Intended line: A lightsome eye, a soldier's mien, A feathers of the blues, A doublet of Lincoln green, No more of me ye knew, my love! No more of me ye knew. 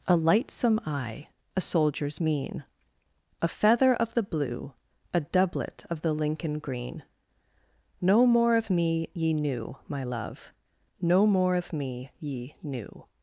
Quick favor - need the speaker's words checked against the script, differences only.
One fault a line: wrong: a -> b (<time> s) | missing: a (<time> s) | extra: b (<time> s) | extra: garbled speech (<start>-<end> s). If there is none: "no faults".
wrong: feathers -> feather (3.5 s)
wrong: blues -> blue (4.2 s)
extra: the (6.0 s)